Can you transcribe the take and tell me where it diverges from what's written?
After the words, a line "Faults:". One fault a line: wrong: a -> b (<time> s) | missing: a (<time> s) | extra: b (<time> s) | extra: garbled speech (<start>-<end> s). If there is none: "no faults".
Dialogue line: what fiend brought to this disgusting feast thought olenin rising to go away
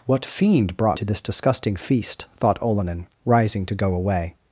what fiend brought to this disgusting feast thought olenin rising to go away
Faults:
no faults